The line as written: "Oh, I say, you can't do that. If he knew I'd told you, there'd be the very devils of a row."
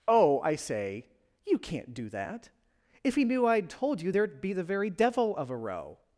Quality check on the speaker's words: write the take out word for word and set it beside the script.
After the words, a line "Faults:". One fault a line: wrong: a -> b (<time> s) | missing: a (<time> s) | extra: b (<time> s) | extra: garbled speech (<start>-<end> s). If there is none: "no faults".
"Oh, I say, you can't do that. If he knew I'd told you, there'd be the very devil of a row."
Faults:
wrong: devils -> devil (4.9 s)